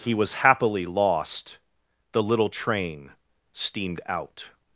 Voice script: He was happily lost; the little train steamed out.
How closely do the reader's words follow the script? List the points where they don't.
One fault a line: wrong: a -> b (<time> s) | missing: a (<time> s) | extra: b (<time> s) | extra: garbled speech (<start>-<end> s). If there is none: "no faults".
no faults